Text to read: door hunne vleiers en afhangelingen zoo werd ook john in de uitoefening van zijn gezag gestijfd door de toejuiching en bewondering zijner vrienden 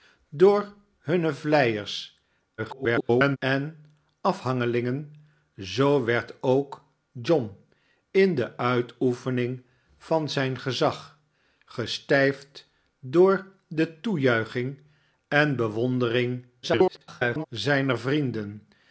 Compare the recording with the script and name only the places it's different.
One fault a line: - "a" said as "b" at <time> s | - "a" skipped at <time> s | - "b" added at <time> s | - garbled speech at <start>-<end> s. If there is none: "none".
- garbled speech at 2.6-3.4 s
- garbled speech at 16.6-17.5 s